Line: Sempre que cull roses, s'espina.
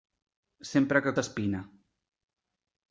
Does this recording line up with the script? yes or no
no